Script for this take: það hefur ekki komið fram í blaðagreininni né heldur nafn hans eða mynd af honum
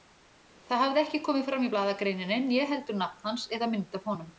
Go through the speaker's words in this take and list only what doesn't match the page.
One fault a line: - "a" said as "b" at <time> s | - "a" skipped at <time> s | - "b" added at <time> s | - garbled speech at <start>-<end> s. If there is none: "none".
- "hefur" said as "hafði" at 0.8 s